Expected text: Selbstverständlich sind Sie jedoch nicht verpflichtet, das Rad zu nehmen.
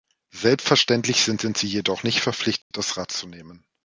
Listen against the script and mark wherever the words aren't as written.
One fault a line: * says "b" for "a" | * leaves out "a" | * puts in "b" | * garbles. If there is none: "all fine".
* puts in "sind"